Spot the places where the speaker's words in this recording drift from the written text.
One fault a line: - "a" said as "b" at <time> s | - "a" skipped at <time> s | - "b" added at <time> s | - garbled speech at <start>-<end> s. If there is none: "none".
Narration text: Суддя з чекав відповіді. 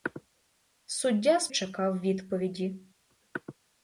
none